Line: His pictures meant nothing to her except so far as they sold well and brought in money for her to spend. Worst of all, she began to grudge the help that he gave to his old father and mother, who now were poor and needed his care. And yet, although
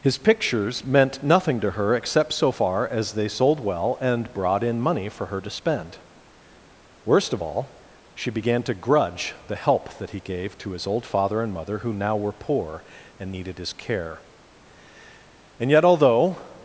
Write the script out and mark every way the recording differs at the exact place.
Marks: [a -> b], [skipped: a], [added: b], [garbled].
His pictures meant nothing to her except so far as they sold well and brought in money for her to spend. Worst of all, she began to grudge the help that he gave to his old father and mother, who now were poor and needed his care. And yet, although